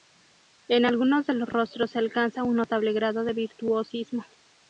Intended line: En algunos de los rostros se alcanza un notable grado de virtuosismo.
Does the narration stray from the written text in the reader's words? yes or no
no